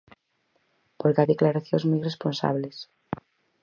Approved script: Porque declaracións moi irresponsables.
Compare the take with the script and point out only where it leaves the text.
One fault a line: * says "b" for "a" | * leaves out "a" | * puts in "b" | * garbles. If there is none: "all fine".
all fine